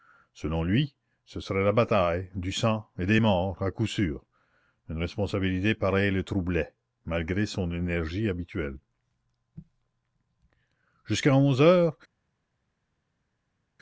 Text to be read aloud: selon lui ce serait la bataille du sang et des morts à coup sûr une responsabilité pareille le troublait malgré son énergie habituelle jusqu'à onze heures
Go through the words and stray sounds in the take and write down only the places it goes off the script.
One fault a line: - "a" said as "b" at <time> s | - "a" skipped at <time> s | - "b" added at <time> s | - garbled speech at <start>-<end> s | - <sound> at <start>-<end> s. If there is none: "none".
none